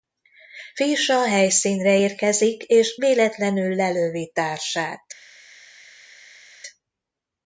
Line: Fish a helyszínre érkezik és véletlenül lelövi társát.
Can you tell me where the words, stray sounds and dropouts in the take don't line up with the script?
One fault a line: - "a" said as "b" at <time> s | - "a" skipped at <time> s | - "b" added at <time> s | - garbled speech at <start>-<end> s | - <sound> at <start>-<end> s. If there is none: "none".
none